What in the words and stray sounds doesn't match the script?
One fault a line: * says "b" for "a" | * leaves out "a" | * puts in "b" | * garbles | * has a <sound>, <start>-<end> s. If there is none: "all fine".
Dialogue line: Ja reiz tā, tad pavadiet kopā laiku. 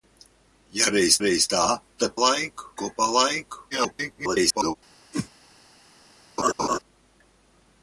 * puts in "reiz"
* says "laiku" for "pavadiet"
* garbles
* has a whoosh, 5.1-5.3 s
* has a laugh, 6.4-6.8 s